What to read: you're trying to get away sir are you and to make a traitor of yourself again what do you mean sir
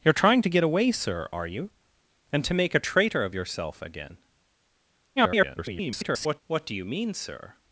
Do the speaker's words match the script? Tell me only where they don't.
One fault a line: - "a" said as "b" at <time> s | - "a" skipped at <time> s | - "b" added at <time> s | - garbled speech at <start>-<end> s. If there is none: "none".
- garbled speech at 5.2-6.4 s